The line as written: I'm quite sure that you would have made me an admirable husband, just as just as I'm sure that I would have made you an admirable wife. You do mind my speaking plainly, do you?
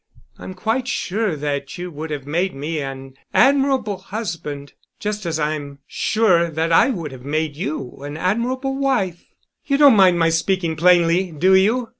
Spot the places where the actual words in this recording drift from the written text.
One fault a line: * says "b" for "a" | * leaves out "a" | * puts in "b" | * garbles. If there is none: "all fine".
* leaves out "just as"
* says "don't" for "do"